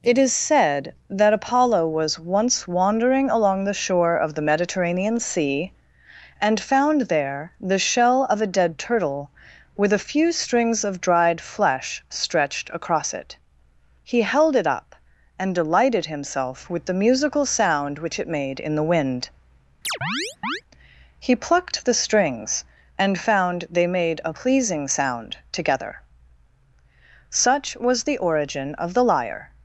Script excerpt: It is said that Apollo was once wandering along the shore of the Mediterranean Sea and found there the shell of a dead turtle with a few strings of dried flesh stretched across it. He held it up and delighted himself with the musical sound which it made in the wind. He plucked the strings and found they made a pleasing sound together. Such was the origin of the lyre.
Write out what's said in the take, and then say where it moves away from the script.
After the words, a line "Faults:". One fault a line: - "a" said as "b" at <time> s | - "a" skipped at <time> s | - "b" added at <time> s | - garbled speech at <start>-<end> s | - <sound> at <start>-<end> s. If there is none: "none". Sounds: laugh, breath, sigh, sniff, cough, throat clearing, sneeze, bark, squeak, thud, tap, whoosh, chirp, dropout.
It is said that Apollo was once wandering along the shore of the Mediterranean Sea and found there the shell of a dead turtle with a few strings of dried flesh stretched across it. He held it up and delighted himself with the musical sound which it made in the wind. He plucked the strings and found they made a pleasing sound together. Such was the origin of the lyre.
Faults:
- chirp at 19.8-20.6 s